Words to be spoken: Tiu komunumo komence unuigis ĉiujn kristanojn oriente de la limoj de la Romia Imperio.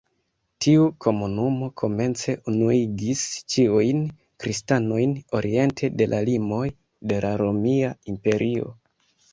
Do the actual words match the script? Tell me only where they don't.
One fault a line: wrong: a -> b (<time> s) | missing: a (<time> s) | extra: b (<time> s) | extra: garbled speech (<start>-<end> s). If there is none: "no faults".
no faults